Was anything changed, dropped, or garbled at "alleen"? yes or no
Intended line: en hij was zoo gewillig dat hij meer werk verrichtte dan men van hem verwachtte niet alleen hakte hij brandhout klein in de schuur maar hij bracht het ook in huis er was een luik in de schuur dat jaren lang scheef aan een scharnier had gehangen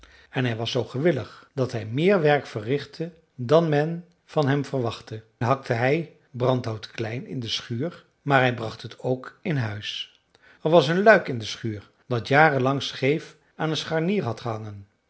yes